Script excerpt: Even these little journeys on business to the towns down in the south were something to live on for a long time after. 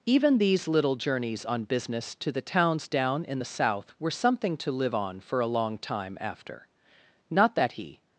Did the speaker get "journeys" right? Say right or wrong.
right